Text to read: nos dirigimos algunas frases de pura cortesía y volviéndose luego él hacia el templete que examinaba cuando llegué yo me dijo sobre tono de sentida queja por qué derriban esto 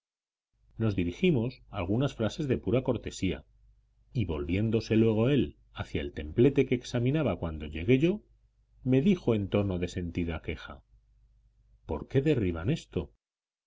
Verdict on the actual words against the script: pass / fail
fail